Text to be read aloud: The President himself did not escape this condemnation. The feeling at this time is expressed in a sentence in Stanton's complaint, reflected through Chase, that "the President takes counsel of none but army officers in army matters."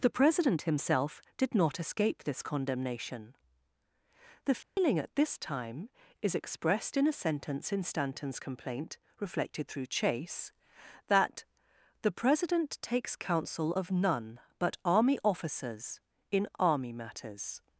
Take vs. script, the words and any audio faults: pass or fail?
fail